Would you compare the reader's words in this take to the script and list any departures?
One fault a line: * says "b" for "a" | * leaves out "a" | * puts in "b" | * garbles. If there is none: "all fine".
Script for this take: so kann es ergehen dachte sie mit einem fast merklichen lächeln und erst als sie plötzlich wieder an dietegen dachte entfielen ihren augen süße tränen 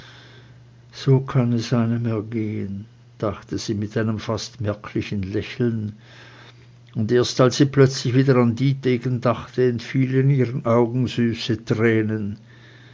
* puts in "einem"